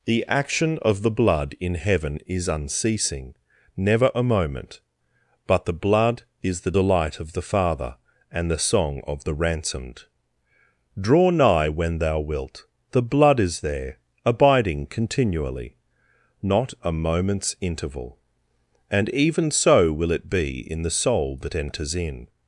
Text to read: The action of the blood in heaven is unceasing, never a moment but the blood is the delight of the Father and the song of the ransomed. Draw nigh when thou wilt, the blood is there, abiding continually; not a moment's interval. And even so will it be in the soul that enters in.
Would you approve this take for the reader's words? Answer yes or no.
yes